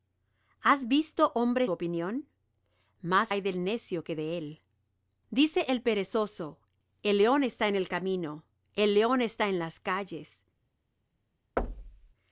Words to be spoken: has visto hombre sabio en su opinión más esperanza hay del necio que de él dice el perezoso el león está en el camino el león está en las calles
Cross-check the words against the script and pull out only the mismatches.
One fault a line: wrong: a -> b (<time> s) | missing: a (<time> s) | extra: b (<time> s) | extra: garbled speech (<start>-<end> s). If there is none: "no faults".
missing: sabio en su (1.7 s)
missing: esperanza (3.3 s)